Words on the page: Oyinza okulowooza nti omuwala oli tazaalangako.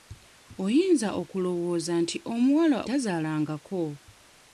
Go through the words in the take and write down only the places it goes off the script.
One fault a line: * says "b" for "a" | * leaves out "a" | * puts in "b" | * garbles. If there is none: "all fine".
* leaves out "oli"